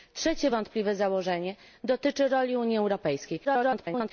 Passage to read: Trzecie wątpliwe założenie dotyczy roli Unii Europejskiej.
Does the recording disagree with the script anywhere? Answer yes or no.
yes